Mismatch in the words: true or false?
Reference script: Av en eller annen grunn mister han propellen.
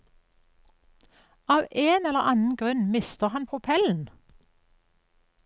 false